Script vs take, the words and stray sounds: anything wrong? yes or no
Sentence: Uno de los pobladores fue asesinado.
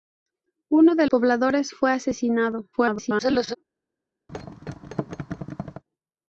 yes